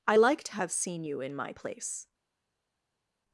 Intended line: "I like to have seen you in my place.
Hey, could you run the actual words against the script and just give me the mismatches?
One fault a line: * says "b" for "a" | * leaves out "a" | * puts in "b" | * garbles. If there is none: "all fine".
all fine